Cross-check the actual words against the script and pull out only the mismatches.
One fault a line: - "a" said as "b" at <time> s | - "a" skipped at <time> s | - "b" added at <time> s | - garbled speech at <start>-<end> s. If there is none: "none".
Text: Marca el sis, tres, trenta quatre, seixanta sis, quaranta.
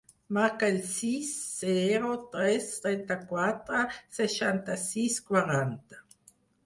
- "zero" added at 1.6 s